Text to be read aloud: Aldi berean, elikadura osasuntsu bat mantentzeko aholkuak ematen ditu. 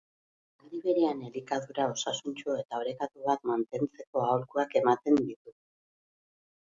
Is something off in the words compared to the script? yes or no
yes